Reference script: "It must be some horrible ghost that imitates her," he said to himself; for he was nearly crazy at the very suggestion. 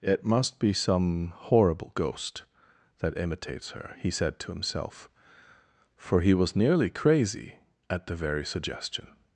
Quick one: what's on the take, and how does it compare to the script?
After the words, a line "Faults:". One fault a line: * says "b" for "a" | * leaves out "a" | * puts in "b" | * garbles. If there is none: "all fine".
"It must be some horrible ghost that imitates her," he said to himself; for he was nearly crazy at the very suggestion.
Faults:
all fine